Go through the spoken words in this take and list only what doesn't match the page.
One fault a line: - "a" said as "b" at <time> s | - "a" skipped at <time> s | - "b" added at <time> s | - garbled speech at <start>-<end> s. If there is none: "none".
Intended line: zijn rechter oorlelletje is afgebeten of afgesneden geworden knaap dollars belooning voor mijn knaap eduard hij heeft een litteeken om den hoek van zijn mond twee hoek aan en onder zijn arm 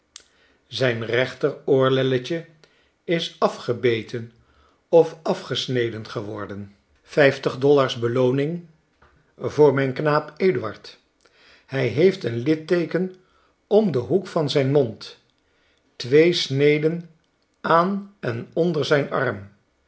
- "knaap" said as "vijftig" at 7.0 s
- "hoek" said as "sneden" at 16.3 s